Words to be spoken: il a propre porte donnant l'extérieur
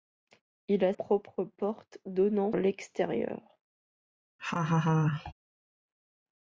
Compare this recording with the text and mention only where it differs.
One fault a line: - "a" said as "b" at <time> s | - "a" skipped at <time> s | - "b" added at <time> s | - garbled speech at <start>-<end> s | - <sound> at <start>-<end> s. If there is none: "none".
- laugh at 4.4-5.3 s